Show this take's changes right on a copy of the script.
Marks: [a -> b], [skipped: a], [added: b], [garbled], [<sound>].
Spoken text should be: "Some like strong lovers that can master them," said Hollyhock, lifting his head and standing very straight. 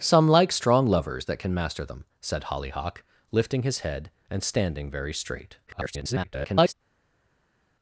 "Some like strong lovers that can master them," said Hollyhock, lifting his head and standing very straight. [garbled]